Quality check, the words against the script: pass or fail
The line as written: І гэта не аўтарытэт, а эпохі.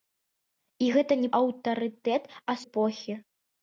pass